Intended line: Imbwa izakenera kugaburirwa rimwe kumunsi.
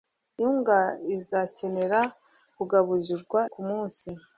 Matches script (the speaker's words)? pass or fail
fail